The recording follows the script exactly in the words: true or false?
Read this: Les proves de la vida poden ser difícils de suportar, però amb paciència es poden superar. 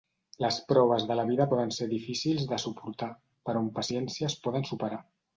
true